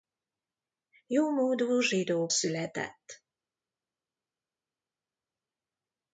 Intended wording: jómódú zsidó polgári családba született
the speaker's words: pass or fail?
fail